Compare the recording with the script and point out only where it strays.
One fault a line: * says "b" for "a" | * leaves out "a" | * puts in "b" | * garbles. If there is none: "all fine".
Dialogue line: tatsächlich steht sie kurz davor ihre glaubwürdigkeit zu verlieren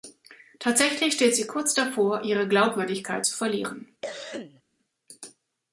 all fine